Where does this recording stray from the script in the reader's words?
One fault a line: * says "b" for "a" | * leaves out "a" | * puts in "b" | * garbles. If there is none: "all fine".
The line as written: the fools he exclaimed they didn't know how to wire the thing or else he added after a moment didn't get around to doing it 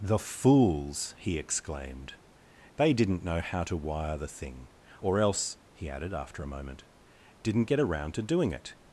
all fine